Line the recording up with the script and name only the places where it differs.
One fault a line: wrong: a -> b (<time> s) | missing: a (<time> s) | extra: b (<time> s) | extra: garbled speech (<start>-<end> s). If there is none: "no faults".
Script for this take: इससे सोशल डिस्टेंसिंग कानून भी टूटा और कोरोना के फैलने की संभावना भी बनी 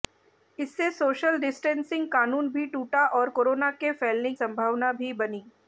missing: की (4.3 s)